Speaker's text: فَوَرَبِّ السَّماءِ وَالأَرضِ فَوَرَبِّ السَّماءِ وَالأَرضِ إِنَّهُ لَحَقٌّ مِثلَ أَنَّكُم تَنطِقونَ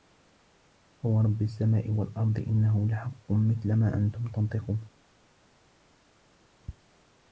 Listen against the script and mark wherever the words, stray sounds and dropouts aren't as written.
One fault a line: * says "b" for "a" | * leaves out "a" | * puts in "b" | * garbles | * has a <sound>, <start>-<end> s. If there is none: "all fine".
* leaves out "فَوَرَبِّ السَّماءِ وَالأَرضِ"
* puts in "ما"